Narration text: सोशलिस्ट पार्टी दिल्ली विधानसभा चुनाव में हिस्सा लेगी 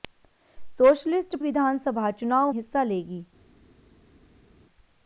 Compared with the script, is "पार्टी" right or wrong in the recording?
wrong